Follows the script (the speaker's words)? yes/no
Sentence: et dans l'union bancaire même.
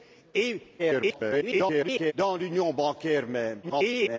no